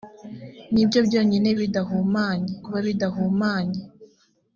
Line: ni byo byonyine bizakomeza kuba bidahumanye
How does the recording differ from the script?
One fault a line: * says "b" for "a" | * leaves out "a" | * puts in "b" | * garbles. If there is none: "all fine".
* says "bidahumanye" for "bizakomeza"